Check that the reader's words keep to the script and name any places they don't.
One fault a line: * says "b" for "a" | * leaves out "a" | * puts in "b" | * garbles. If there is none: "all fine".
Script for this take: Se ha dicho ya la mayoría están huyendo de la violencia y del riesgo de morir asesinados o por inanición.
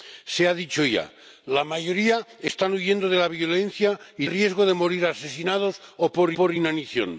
* leaves out "del"
* puts in "por"